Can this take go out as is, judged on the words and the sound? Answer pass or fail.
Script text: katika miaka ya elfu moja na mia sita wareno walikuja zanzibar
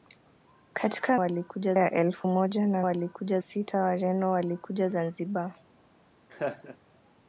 fail